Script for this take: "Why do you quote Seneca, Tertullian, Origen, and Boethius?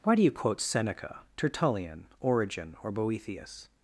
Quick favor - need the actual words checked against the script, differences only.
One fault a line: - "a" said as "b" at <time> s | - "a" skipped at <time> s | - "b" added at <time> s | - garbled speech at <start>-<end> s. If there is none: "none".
- "and" said as "or" at 2.8 s